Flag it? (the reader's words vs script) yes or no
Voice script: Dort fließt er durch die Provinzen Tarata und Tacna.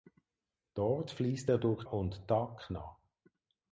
yes